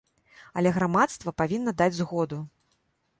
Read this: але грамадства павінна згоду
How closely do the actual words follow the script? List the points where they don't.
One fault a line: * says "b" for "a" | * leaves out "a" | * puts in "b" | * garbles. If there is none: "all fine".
* puts in "даць"